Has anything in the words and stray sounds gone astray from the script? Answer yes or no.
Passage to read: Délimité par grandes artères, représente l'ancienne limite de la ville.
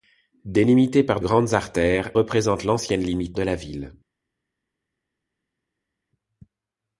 no